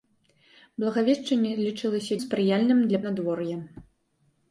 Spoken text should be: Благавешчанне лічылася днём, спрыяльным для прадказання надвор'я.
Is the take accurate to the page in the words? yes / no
no